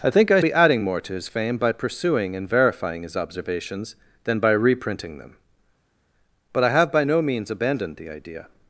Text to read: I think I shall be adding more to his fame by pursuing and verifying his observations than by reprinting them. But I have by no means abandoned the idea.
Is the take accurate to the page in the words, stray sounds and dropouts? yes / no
no